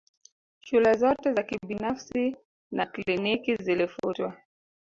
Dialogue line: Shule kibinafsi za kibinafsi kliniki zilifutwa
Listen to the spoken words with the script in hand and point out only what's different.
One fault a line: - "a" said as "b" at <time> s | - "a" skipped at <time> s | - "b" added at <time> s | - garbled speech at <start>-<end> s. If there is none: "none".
- "kibinafsi" said as "zote" at 0.9 s
- "na" added at 2.7 s